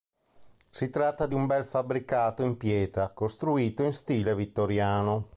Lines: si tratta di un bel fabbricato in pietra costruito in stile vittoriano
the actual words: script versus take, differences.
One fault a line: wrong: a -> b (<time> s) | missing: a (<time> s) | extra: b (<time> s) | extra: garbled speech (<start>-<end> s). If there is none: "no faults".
no faults